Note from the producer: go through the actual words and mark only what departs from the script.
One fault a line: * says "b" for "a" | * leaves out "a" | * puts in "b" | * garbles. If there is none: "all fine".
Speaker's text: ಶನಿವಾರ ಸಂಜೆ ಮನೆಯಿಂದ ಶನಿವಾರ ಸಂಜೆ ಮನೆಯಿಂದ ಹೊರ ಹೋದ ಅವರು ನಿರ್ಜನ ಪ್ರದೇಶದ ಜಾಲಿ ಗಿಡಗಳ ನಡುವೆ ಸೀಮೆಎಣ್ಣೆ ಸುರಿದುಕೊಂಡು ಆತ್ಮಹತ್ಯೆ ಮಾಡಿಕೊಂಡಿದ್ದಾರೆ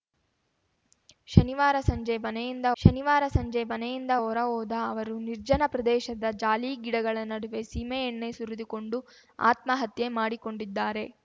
all fine